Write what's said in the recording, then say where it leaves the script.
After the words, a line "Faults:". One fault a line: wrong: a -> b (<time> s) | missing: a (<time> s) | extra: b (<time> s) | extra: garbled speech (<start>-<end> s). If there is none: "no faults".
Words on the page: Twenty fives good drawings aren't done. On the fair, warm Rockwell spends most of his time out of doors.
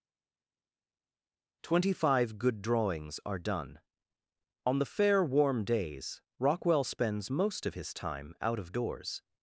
Twenty five good drawings are done. On the fair, warm days Rockwell spends most of his time out of doors.
Faults:
wrong: fives -> five (1.9 s)
wrong: aren't -> are (3.3 s)
extra: days (5.6 s)